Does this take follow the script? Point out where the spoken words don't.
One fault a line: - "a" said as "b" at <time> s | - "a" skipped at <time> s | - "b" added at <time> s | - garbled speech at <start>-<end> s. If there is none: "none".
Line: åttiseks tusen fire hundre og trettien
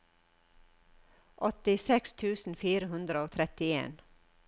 none